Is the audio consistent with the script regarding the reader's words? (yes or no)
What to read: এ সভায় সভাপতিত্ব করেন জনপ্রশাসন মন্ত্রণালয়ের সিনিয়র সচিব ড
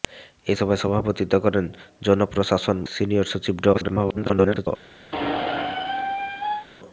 no